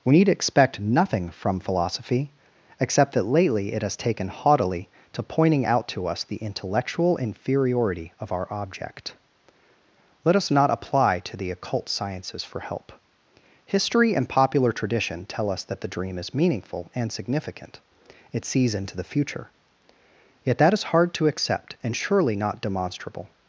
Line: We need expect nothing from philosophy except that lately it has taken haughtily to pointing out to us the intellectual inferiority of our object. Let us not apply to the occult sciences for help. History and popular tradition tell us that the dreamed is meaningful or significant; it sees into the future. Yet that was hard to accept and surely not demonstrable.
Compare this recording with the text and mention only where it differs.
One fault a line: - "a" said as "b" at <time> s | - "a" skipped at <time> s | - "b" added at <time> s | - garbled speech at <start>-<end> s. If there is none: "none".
- "dreamed" said as "dream" at 15.9 s
- "or" said as "and" at 16.9 s
- "was" said as "is" at 20.7 s